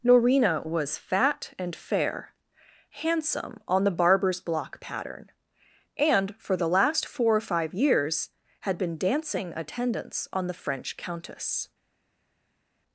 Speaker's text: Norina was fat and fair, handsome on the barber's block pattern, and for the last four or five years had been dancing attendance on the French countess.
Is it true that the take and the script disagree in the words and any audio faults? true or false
false